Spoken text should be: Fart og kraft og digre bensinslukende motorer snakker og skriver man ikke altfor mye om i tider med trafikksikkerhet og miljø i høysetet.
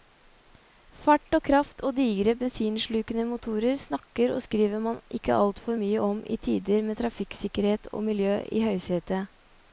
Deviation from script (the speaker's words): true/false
false